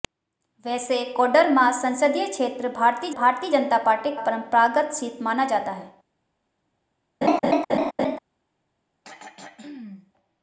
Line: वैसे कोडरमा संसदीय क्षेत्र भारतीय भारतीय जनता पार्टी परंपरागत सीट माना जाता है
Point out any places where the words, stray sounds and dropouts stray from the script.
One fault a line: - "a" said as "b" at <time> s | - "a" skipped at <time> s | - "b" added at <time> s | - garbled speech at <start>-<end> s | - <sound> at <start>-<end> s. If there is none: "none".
- laugh at 7.2-8.2 s
- throat clearing at 9.0-10.1 s